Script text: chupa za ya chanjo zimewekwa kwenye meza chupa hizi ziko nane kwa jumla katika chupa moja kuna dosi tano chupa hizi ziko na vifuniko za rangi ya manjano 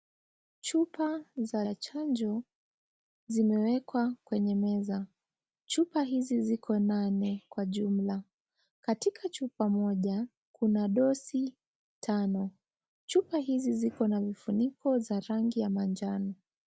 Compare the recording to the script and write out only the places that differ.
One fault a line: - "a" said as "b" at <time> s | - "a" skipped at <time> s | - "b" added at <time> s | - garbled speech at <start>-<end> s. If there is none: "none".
none